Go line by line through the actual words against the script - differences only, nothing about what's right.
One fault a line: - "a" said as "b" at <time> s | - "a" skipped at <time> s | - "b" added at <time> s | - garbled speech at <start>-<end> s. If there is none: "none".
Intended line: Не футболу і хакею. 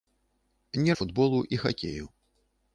none